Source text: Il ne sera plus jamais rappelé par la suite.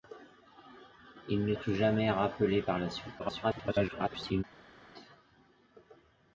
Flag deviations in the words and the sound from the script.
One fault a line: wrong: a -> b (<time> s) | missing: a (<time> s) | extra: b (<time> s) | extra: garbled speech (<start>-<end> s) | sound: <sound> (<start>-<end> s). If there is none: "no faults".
missing: sera (1.5 s)
extra: garbled speech (3.2-4.4 s)